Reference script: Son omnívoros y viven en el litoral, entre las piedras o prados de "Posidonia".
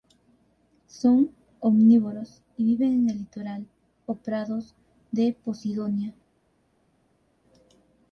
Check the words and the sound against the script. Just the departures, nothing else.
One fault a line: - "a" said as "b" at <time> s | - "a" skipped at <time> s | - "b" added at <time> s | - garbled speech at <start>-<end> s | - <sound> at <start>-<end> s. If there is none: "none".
- "entre las piedras" skipped at 3.7 s